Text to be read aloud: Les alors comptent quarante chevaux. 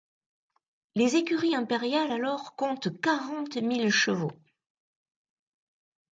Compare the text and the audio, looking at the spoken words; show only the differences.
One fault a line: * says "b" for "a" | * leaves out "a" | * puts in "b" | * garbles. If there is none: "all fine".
* puts in "écuries impériales"
* puts in "mille"